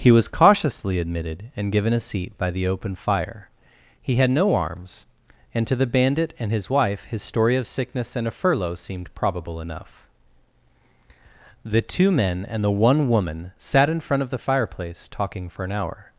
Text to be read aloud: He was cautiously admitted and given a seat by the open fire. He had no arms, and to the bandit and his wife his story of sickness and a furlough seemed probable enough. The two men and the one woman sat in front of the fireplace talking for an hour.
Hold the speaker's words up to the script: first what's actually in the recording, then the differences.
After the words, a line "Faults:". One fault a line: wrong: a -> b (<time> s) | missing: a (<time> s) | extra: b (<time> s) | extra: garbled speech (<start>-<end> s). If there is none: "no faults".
He was cautiously admitted and given a seat by the open fire. He had no arms, and to the bandit and his wife his story of sickness and a furlough seemed probable enough. The two men and the one woman sat in front of the fireplace talking for an hour.
Faults:
no faults